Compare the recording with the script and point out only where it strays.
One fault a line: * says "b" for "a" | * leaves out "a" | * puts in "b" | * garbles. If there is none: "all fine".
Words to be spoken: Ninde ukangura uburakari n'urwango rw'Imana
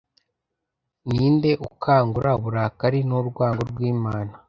all fine